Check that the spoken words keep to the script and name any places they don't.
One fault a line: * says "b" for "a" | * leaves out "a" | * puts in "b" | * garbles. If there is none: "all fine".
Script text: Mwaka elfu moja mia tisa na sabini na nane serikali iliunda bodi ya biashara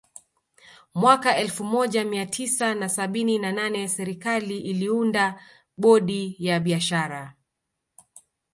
all fine